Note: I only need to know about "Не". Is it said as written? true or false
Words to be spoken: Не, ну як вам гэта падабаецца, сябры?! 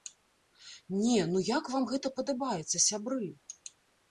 true